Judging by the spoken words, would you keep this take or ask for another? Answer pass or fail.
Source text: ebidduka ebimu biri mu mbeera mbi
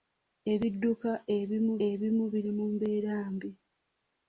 fail